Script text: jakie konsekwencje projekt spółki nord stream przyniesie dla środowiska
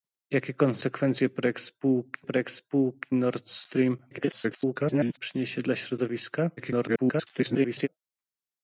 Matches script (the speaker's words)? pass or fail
fail